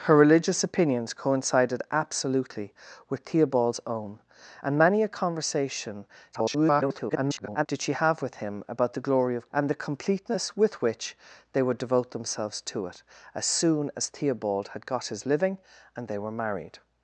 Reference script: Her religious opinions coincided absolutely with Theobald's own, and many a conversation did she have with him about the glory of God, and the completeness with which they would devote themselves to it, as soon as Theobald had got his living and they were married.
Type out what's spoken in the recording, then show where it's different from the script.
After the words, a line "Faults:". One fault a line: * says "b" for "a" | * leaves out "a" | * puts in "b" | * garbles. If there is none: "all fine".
Her religious opinions coincided absolutely with Theobald's own, and many a conversation [garbled] did she have with him about the glory of And the completeness with which they would devote themselves to it, as soon as Theobald had got his living and they were married.
Faults:
* garbles
* leaves out "God"